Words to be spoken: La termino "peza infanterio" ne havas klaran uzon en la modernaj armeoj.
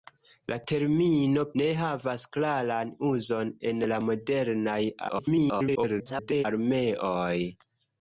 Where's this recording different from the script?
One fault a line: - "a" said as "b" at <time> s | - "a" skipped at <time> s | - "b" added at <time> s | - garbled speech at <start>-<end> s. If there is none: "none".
- "peza infanterio" skipped at 1.4 s
- garbled speech at 5.1-6.5 s